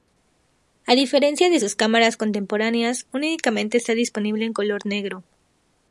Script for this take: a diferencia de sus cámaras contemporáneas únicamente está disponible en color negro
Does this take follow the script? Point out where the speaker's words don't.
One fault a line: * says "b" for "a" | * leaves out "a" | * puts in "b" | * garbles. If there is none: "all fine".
all fine